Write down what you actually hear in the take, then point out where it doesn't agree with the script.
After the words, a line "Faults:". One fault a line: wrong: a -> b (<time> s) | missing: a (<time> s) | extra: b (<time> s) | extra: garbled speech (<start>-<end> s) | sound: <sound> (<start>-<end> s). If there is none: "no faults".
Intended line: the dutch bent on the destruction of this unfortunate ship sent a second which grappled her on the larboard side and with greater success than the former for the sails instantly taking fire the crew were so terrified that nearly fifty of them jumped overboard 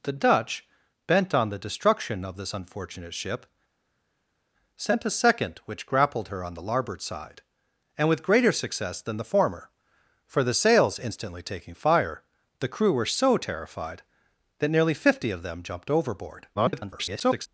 the dutch bent on the destruction of this unfortunate ship sent a second which grappled her on the larboard side and with greater success than the former for the sails instantly taking fire the crew were so terrified that nearly fifty of them jumped overboard [garbled]
Faults:
extra: garbled speech (16.6-17.5 s)